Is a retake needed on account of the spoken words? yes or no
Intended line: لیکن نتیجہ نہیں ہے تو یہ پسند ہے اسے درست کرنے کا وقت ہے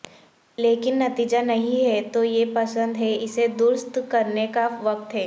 no